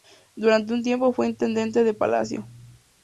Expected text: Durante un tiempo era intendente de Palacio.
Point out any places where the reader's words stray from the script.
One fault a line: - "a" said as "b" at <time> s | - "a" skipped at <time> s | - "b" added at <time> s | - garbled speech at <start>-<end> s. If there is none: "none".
- "era" said as "fue" at 1.1 s